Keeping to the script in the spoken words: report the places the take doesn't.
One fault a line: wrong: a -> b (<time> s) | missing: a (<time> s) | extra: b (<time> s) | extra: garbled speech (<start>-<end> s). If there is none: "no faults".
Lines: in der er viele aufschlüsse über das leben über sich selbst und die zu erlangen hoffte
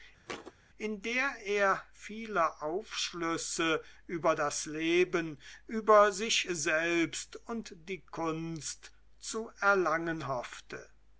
extra: kunst (8.0 s)